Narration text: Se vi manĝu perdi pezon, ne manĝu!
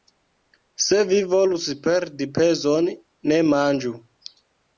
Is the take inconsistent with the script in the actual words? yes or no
yes